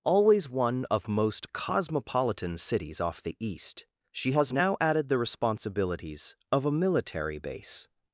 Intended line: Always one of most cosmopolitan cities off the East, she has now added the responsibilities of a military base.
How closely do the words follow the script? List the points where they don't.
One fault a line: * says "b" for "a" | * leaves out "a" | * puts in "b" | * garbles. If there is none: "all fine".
all fine